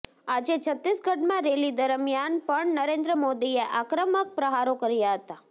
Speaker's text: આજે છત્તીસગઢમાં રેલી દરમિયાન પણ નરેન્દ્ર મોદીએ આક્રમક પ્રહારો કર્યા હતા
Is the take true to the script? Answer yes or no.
yes